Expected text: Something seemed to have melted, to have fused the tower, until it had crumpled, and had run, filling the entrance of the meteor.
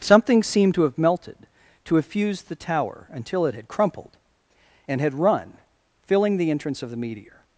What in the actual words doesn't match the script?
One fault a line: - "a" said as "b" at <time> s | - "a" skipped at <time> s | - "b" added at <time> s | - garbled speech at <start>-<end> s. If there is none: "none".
none